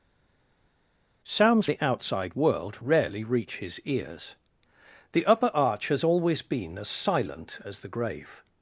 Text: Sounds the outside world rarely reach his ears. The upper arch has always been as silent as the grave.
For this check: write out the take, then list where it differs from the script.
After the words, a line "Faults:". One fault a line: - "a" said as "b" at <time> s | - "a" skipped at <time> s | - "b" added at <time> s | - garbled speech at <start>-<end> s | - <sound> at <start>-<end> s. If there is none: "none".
Sounds the outside world rarely reach his ears. The upper arch has always been as silent as the grave.
Faults:
none